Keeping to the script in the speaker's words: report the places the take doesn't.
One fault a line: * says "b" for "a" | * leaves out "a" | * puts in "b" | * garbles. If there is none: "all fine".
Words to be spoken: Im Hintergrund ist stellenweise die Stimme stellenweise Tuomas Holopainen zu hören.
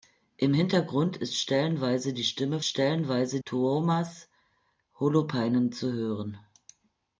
all fine